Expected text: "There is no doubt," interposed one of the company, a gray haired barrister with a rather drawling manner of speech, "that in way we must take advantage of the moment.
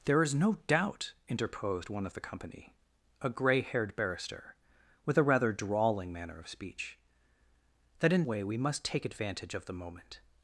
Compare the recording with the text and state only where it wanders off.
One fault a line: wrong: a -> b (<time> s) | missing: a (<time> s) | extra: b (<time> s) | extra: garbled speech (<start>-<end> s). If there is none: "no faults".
no faults